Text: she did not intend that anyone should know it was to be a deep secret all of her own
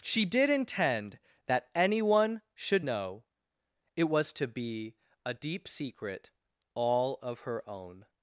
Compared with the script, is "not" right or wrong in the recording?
wrong